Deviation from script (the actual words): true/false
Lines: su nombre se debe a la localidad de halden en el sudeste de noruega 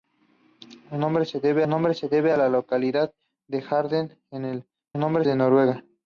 true